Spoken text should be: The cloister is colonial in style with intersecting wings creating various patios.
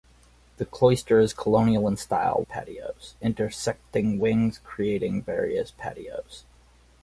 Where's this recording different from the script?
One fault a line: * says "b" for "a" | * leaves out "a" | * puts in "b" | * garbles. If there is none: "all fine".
* says "patios" for "with"